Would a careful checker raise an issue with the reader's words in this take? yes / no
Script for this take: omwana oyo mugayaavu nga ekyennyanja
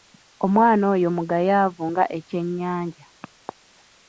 no